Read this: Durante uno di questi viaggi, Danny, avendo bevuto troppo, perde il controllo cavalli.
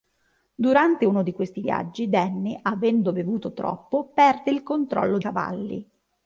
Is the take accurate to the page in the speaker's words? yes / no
yes